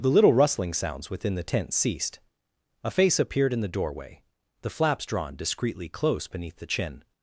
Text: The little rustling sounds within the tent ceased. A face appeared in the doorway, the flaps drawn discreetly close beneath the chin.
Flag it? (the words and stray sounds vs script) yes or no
no